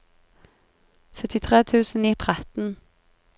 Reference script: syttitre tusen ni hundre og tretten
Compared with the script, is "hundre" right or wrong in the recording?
wrong